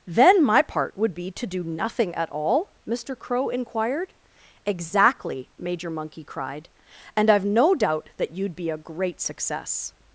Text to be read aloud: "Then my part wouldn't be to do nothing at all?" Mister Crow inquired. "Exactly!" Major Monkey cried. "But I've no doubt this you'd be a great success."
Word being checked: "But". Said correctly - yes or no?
no